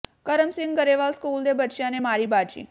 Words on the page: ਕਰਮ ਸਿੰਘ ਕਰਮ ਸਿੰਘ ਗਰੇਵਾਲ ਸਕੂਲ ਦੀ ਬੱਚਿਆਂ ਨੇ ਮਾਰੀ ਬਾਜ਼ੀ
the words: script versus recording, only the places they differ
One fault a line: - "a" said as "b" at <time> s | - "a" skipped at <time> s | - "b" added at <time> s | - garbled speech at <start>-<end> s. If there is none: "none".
- "ਕਰਮ ਸਿੰਘ" skipped at 0.8 s
- "ਦੀ" said as "ਦੇ" at 1.4 s